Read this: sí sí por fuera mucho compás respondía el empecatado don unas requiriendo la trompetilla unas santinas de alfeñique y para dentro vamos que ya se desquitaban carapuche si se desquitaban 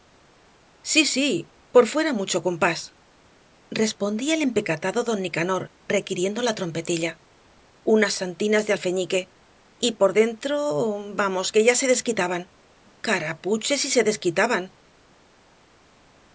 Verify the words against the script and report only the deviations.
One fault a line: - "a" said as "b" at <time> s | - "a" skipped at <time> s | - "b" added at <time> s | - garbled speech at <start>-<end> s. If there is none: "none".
- "unas" said as "nicanor" at 5.2 s
- "para" said as "por" at 9.9 s